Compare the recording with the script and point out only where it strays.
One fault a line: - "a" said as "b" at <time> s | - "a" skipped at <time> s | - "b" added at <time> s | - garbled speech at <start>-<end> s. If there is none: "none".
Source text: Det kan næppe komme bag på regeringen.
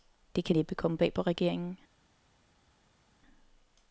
none